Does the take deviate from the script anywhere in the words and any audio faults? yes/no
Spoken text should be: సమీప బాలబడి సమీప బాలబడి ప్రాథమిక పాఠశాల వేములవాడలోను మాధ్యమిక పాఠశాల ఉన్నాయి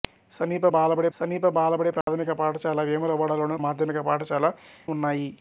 yes